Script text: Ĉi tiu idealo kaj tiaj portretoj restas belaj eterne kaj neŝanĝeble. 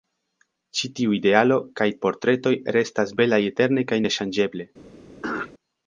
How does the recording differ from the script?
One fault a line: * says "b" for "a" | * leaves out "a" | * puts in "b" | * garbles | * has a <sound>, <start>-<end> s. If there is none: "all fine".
* leaves out "tiaj"
* has a throat clearing, 5.2-5.5 s